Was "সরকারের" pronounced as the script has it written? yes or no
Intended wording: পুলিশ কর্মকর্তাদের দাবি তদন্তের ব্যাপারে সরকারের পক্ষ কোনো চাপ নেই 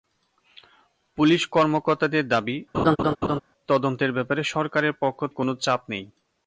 yes